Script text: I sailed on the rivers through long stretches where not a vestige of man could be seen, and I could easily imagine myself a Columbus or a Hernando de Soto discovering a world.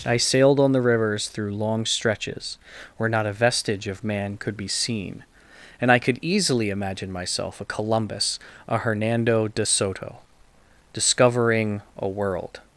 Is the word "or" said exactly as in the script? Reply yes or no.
no